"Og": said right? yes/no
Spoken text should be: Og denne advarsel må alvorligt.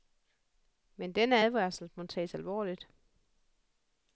no